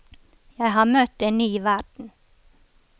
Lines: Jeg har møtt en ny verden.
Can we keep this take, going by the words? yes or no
yes